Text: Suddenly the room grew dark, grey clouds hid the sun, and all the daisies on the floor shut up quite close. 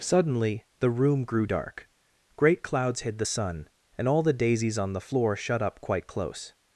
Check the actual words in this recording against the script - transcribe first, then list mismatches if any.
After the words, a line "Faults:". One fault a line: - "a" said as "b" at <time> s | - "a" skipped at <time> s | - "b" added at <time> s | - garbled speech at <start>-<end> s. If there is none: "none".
Suddenly the room grew dark, great clouds hid the sun, and all the daisies on the floor shut up quite close.
Faults:
- "grey" said as "great" at 2.4 s